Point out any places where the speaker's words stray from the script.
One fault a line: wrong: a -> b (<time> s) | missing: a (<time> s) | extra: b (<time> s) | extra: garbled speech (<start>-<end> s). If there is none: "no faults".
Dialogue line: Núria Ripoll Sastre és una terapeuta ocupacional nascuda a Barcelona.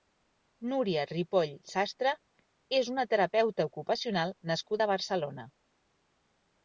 no faults